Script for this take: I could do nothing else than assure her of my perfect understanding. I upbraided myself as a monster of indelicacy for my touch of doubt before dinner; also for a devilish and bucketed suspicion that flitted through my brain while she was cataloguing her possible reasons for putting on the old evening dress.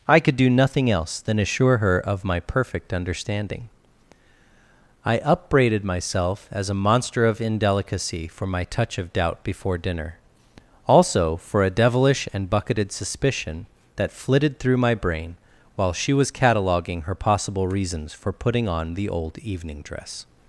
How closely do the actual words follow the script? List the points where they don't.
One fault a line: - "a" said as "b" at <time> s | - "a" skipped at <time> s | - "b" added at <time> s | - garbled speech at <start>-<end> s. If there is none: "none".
none